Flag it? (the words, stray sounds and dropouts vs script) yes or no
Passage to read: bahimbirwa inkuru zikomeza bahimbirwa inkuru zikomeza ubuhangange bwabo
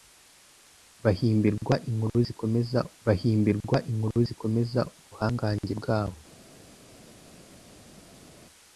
no